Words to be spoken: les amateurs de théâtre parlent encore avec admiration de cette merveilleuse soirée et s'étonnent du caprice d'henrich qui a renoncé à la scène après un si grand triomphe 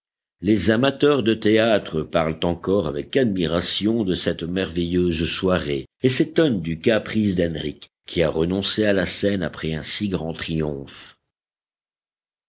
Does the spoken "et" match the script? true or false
true